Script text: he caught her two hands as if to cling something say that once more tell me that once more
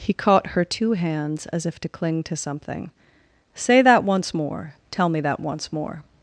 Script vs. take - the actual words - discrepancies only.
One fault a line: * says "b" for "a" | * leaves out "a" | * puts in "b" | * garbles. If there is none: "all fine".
* puts in "to"